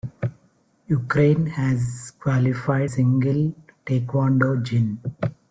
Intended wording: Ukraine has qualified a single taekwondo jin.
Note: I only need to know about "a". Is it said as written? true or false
false